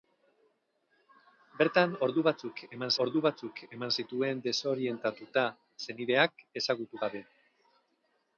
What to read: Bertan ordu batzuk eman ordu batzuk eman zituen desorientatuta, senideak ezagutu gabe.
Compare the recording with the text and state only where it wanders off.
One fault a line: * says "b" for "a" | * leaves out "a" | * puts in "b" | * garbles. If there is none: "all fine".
all fine